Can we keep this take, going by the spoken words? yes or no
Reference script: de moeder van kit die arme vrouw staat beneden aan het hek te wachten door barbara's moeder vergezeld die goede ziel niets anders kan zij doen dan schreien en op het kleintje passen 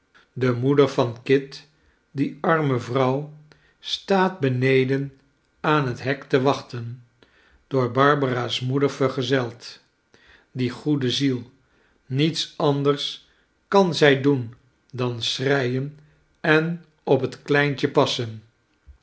yes